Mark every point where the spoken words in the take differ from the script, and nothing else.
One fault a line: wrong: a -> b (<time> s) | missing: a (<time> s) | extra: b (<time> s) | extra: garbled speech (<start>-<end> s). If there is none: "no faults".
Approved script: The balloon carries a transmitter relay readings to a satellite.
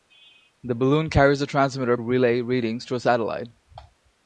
no faults